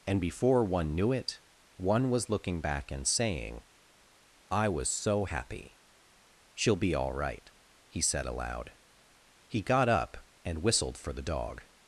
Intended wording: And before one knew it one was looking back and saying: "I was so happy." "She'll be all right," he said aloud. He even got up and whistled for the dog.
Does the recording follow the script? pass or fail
fail